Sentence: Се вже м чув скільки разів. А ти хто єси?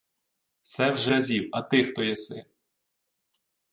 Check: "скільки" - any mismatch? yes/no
yes